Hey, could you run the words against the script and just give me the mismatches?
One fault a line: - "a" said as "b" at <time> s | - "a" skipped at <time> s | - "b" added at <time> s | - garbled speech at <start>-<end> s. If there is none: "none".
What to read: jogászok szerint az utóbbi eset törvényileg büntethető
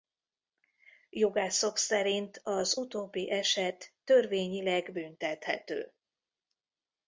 none